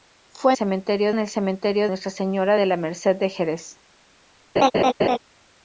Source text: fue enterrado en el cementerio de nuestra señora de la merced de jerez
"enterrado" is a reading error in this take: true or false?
true